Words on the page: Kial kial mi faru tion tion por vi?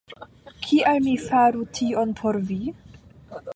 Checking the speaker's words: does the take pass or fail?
fail